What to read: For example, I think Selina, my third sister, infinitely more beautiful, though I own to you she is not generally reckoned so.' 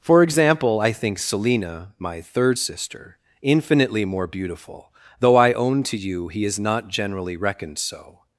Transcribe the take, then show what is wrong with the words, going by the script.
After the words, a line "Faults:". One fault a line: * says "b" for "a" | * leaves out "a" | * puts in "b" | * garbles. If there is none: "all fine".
For example, I think Selina, my third sister, infinitely more beautiful, though I own to you he is not generally reckoned so.'
Faults:
* says "he" for "she"